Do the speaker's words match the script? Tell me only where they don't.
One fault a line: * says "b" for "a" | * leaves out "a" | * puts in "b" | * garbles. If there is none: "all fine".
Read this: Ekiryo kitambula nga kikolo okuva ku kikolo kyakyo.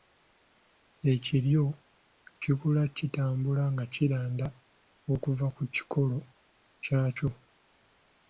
* puts in "kikula"
* says "kiranda" for "kikolo"